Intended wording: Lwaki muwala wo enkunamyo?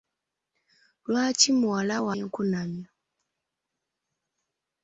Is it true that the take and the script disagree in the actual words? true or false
false